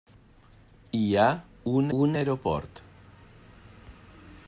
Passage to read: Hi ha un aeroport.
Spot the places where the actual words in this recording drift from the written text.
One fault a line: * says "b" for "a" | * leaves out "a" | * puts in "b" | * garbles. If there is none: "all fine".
* puts in "un"